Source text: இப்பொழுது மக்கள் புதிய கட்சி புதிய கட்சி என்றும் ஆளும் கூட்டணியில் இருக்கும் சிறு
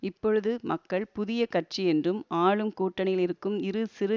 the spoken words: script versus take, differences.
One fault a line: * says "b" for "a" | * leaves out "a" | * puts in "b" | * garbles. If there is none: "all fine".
* leaves out "புதிய கட்சி"
* puts in "இரு"